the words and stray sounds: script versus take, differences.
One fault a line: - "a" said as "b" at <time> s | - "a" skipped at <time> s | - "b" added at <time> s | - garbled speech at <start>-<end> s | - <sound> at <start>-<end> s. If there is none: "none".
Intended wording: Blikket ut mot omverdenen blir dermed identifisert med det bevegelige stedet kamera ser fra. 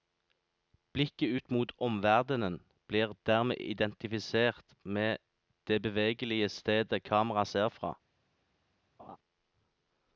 - laugh at 9.0-9.2 s